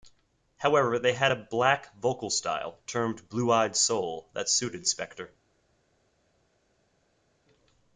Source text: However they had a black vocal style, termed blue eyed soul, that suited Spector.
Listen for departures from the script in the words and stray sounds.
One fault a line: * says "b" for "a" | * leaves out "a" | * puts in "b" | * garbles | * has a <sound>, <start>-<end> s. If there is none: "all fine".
all fine